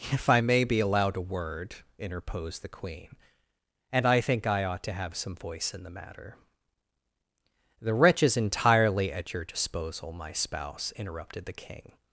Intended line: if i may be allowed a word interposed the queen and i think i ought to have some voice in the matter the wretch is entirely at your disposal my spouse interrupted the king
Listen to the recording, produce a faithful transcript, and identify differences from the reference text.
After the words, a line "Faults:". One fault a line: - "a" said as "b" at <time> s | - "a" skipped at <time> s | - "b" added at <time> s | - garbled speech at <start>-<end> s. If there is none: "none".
if i may be allowed a word interposed the queen and i think i ought to have some voice in the matter the wretch is entirely at your disposal my spouse interrupted the king
Faults:
none